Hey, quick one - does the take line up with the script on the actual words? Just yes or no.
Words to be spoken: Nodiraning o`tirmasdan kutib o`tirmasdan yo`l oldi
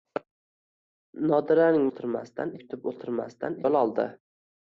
yes